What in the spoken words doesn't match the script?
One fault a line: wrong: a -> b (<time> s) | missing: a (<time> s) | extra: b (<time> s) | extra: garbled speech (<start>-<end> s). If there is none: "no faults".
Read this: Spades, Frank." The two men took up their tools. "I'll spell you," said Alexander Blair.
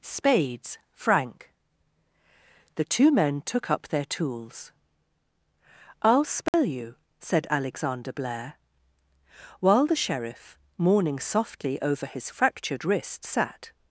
extra: While the sheriff mourning softly over his fractured wrist sat (9.6 s)